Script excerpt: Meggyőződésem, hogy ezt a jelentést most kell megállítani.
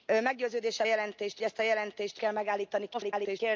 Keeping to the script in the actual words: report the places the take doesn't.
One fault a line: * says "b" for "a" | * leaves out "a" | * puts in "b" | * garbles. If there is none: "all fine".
* says "jelentést" for "hogy"
* leaves out "most"
* garbles